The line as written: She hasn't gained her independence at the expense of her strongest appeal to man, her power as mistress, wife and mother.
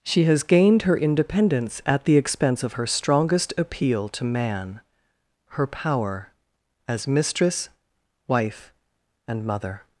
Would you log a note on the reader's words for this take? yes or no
yes